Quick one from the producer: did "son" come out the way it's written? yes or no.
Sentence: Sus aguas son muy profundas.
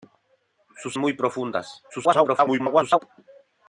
no